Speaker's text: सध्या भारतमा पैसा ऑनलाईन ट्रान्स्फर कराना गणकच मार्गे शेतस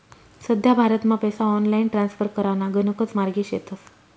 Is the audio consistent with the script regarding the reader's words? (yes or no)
yes